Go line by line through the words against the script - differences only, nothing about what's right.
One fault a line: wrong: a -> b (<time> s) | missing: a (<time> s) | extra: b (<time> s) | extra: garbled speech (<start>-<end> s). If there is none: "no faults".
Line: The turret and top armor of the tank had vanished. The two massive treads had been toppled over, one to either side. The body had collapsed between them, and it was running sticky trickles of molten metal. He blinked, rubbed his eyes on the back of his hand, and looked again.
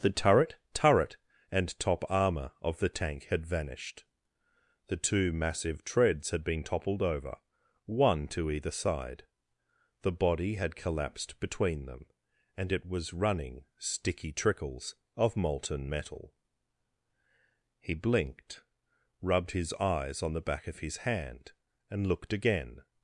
extra: turret (0.7 s)